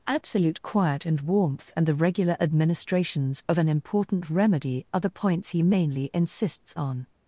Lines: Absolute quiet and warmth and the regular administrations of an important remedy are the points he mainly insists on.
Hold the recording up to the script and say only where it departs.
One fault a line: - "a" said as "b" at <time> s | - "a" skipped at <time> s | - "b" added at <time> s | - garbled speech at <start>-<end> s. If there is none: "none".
none